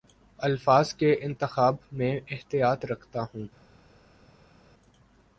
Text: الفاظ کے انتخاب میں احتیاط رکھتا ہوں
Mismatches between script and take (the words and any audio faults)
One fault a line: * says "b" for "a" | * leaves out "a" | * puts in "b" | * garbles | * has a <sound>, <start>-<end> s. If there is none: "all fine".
all fine